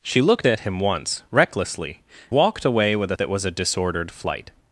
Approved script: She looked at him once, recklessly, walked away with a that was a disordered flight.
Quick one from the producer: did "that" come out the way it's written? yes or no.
yes